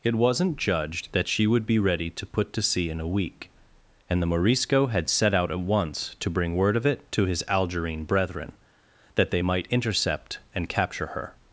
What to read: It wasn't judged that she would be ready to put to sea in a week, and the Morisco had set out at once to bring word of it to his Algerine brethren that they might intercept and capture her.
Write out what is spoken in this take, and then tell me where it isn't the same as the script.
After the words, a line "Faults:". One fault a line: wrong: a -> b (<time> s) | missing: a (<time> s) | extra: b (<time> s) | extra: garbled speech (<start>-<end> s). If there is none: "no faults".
It wasn't judged that she would be ready to put to sea in a week, and the Morisco had set out at once to bring word of it to his Algerine brethren that they might intercept and capture her.
Faults:
no faults